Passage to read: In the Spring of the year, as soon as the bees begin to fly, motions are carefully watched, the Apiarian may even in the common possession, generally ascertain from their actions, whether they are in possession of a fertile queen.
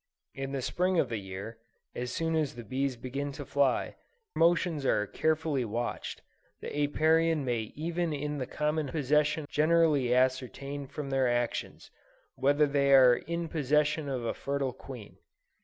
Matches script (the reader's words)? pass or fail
pass